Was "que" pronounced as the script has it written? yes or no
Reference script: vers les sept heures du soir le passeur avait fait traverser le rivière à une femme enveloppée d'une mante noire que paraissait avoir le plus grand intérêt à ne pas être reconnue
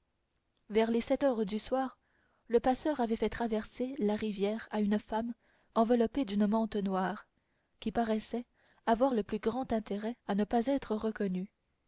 no